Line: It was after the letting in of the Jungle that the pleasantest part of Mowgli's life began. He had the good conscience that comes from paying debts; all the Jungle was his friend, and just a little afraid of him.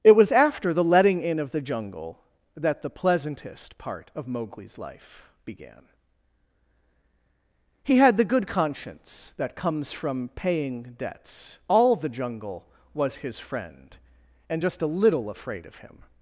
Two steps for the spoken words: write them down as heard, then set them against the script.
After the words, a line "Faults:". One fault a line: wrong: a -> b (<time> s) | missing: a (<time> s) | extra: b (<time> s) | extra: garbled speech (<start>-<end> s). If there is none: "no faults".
It was after the letting in of the Jungle that the pleasantest part of Mowgli's life began. He had the good conscience that comes from paying debts; all the Jungle was his friend, and just a little afraid of him.
Faults:
no faults